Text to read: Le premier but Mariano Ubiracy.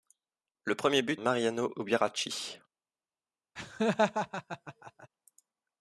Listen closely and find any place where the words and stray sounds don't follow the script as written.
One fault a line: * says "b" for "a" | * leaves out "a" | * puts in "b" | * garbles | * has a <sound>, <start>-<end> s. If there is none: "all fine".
* has a laugh, 3.6-5.1 s